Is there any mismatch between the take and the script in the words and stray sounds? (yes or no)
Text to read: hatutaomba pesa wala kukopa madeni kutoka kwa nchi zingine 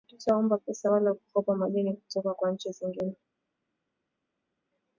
no